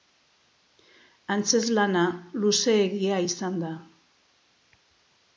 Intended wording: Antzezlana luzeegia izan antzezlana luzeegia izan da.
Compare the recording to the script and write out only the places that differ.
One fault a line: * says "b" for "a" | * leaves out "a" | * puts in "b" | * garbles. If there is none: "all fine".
* leaves out "antzezlana luzeegia izan"